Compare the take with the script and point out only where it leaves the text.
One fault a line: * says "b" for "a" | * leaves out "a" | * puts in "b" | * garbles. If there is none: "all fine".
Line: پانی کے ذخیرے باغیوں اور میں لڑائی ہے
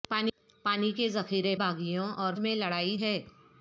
all fine